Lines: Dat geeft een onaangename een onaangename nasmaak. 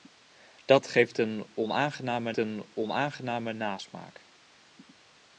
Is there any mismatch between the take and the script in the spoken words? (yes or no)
no